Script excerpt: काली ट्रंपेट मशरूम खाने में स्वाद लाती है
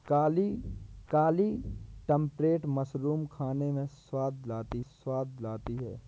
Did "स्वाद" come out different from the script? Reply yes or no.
no